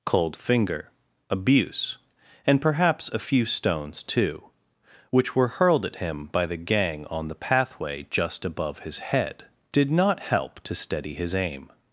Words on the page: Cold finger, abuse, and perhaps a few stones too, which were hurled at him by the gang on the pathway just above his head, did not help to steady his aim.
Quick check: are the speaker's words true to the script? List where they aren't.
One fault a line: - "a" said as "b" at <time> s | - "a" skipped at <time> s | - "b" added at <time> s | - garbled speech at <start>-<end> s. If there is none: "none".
none